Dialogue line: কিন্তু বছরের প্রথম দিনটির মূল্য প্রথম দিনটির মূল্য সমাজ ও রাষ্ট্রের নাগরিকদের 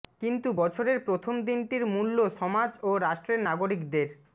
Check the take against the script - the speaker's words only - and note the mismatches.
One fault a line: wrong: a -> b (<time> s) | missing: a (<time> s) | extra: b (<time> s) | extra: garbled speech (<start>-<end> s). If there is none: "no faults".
missing: প্রথম দিনটির মূল্য (2.2 s)